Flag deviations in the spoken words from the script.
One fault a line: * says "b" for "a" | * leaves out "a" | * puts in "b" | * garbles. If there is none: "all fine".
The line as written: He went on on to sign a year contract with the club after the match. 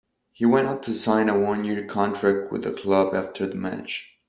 * leaves out "on"
* puts in "one"